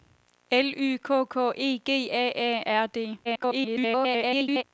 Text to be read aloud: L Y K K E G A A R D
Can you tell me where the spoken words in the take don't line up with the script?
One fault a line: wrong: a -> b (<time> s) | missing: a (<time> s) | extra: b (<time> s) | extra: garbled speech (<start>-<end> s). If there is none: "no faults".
extra: garbled speech (3.2-4.6 s)